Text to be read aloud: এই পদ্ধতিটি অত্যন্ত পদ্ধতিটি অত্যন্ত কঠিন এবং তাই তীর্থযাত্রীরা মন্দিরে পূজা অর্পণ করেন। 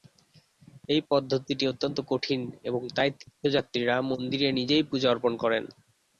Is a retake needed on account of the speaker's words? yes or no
yes